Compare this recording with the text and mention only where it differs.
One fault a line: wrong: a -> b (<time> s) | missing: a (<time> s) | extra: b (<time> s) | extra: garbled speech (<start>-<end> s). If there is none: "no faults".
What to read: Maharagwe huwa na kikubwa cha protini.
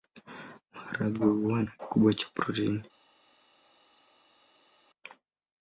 no faults